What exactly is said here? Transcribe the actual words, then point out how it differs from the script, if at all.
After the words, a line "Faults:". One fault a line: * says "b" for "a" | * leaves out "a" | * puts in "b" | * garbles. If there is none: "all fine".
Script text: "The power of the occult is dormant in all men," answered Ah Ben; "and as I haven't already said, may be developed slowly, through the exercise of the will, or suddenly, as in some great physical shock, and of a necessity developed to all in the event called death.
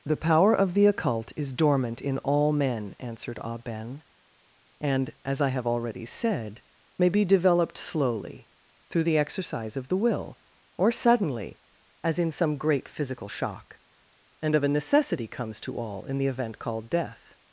"The power of the occult is dormant in all men," answered Ah Ben; "and as I have already said, may be developed slowly, through the exercise of the will, or suddenly, as in some great physical shock, and of a necessity comes to all in the event called death.
Faults:
* says "have" for "haven't"
* says "comes" for "developed"